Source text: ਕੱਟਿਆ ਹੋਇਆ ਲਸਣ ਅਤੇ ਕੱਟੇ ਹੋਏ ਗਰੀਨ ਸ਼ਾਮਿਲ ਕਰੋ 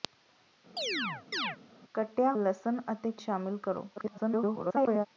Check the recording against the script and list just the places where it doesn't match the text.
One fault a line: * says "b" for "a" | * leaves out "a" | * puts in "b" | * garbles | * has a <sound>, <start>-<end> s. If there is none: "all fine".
* has a chirp, 0.8-1.6 s
* leaves out "ਹੋਇਆ"
* leaves out "ਕੱਟੇ ਹੋਏ ਗਰੀਨ"
* garbles